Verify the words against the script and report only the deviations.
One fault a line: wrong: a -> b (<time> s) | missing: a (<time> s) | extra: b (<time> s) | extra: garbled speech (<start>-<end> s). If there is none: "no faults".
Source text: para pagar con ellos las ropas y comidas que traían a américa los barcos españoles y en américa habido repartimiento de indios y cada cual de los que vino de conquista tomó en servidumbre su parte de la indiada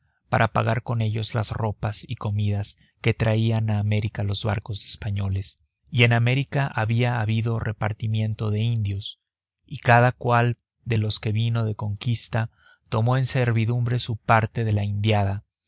extra: había (6.7 s)